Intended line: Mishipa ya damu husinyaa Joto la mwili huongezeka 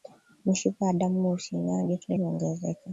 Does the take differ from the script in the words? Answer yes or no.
yes